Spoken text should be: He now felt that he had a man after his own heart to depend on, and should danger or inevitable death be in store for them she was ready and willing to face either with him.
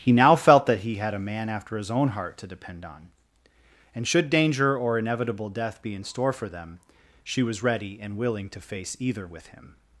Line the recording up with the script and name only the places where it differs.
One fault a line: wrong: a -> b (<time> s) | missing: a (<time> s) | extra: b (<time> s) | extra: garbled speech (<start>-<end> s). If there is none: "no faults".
no faults